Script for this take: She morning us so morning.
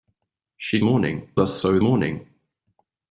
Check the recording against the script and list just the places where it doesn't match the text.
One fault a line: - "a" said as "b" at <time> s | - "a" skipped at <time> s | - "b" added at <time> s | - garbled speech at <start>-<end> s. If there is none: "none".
none